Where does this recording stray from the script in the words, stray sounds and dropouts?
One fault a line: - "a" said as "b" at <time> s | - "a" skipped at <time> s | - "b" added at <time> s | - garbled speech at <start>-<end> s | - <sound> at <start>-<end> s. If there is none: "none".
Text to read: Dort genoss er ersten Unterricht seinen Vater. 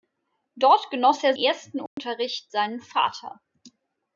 - dropout at 1.9-2.0 s